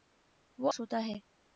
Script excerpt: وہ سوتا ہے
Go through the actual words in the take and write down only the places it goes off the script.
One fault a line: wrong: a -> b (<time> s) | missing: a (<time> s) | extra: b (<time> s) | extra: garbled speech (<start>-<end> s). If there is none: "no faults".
no faults